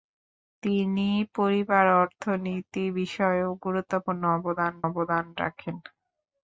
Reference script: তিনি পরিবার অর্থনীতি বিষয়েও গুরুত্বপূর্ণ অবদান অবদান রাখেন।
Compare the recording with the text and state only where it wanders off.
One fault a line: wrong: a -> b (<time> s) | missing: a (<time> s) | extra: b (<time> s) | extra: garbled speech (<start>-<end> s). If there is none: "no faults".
no faults